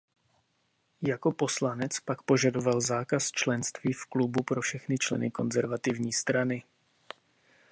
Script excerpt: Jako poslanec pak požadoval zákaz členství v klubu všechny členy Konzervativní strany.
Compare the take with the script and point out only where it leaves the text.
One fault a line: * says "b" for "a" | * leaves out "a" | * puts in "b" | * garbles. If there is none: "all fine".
* puts in "pro"